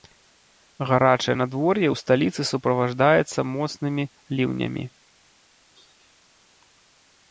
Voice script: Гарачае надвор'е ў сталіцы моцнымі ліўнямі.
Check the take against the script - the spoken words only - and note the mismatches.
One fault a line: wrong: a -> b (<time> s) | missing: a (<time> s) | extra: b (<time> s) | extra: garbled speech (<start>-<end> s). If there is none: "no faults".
extra: суправаджаецца (2.5 s)